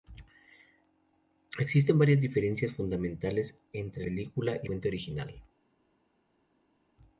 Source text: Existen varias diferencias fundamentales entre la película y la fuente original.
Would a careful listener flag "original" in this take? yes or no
no